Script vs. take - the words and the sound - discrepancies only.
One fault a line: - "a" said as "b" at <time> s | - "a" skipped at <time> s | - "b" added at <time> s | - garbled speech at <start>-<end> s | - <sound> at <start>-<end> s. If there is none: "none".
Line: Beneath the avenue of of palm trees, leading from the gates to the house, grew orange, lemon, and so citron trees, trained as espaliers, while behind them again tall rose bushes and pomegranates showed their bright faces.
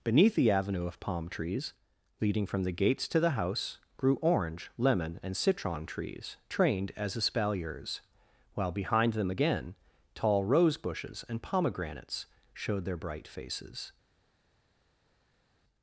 - "of" skipped at 1.0 s
- "so" skipped at 5.4 s